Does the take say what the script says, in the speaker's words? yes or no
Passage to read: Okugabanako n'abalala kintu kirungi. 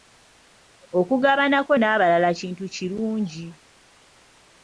yes